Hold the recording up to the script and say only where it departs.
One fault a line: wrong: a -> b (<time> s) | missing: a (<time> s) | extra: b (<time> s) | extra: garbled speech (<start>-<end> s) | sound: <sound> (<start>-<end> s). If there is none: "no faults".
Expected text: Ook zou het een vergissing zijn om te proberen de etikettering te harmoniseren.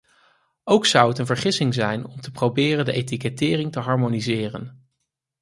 no faults